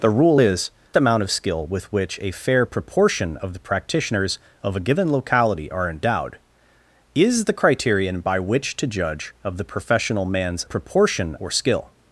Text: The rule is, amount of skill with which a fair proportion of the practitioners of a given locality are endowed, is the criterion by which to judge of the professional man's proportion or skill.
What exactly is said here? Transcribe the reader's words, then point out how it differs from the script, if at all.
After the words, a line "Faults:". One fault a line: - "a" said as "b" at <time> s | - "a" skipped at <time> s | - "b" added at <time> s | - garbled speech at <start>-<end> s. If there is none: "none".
The rule is, amount of skill with which a fair proportion of the practitioners of a given locality are endowed, is the criterion by which to judge of the professional man's proportion or skill.
Faults:
none